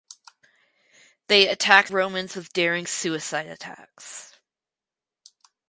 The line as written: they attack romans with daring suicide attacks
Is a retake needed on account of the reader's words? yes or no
no